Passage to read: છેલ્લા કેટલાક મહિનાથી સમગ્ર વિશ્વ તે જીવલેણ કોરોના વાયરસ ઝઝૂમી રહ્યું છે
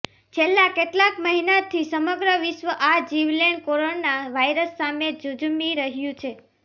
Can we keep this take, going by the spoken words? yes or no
no